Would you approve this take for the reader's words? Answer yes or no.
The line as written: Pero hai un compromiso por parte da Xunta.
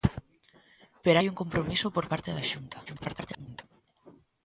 no